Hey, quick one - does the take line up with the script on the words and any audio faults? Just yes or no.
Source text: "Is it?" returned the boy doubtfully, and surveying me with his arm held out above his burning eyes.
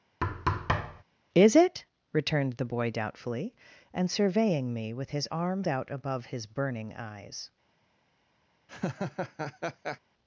no